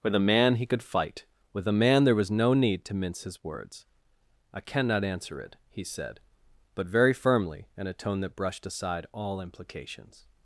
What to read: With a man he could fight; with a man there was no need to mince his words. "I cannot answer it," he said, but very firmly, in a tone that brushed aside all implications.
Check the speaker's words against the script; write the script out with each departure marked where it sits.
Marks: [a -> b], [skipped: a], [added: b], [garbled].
With a man he could fight; with a man there was no need to mince his words. "I cannot answer it," he said, but very firmly, in a tone that brushed aside all implications.